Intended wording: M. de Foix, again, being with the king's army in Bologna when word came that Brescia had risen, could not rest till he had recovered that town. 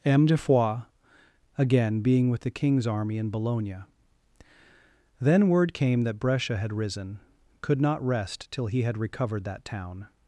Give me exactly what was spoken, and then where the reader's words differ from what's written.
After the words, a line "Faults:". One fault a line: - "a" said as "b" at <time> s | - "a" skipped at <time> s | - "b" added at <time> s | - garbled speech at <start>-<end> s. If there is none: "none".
M. de Foix, again, being with the king's army in Bologna then word came that Brescia had risen, could not rest till he had recovered that town.
Faults:
- "when" said as "then" at 5.2 s